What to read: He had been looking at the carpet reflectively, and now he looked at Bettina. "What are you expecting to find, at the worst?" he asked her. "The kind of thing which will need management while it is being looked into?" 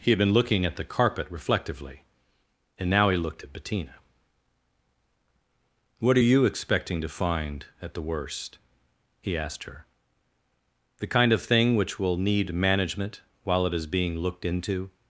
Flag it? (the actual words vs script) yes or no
no